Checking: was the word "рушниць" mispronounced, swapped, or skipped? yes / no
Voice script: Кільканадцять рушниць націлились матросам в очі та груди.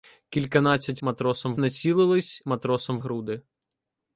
yes